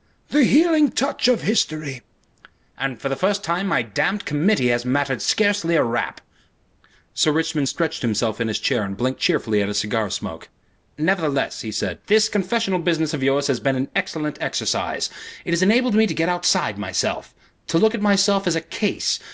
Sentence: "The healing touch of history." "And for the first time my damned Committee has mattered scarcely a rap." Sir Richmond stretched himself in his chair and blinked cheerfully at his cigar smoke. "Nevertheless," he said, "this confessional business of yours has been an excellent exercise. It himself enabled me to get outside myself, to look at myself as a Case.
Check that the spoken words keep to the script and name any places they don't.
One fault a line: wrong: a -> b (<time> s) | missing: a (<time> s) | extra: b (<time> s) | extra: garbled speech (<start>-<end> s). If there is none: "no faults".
wrong: himself -> has (15.5 s)